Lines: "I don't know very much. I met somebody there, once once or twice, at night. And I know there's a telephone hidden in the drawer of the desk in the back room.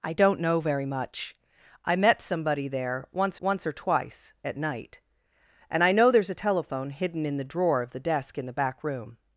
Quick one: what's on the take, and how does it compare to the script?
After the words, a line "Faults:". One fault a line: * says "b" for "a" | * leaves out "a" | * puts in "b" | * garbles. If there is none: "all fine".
"I don't know very much. I met somebody there, once once or twice, at night. And I know there's a telephone hidden in the drawer of the desk in the back room.
Faults:
all fine